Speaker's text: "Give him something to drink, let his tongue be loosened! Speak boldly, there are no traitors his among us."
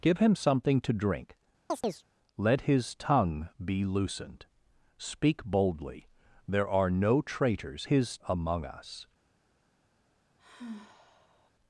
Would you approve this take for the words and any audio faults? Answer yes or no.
no